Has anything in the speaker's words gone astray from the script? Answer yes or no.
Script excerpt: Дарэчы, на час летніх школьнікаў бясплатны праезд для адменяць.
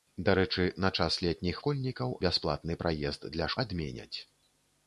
no